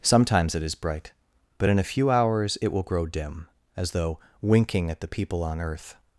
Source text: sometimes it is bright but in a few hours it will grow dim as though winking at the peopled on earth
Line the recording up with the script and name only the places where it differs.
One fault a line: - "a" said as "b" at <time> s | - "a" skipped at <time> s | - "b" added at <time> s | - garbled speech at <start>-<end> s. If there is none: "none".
- "peopled" said as "people" at 5.1 s